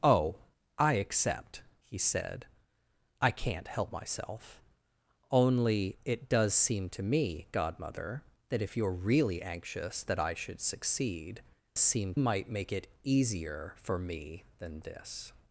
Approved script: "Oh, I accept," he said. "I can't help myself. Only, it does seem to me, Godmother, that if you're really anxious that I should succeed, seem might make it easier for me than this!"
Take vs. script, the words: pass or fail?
pass